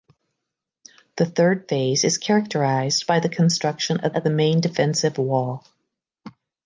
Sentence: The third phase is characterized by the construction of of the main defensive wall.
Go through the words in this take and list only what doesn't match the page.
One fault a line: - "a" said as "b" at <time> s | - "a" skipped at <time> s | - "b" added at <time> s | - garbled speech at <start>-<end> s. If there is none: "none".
none